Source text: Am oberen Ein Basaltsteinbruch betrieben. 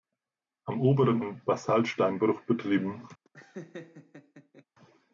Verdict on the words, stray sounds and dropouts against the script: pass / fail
fail